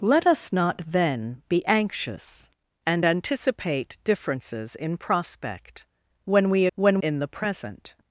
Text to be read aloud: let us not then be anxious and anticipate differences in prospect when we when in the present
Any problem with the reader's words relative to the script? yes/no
no